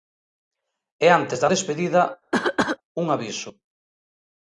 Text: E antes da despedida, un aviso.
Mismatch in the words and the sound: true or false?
true